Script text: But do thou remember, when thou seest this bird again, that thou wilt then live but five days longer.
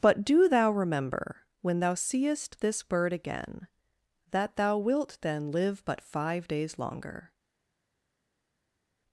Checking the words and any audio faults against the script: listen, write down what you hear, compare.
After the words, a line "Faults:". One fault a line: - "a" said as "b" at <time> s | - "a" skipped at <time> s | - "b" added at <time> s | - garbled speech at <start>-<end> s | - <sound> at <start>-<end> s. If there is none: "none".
But do thou remember, when thou seest this bird again, that thou wilt then live but five days longer.
Faults:
none